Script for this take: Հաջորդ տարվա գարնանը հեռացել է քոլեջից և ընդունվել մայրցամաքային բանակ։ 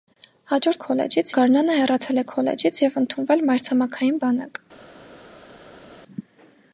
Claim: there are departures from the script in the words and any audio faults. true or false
true